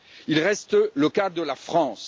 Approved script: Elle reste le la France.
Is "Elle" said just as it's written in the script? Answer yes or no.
no